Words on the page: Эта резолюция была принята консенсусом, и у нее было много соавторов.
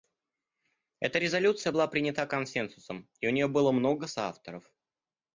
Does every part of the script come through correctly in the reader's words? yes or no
yes